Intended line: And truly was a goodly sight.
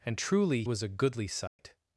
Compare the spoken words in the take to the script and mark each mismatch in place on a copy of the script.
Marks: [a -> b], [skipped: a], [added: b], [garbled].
And truly was a goodly sight.